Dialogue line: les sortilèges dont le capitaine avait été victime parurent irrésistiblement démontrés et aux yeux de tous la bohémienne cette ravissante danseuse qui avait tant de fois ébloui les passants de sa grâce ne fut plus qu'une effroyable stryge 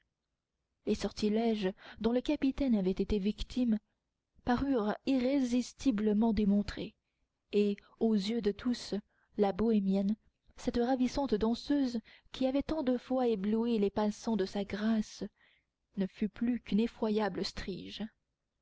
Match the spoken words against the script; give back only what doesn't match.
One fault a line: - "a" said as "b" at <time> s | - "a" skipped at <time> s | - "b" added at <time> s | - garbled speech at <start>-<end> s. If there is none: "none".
none